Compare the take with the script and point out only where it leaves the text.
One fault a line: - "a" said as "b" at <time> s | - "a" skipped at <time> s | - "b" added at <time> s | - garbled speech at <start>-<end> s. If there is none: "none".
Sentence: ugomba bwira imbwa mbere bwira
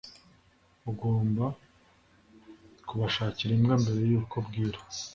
- "bwira" said as "kubashakira" at 2.9 s
- "yuko" added at 4.1 s